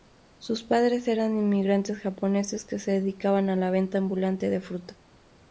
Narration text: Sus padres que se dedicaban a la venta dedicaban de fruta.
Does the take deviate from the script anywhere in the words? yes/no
yes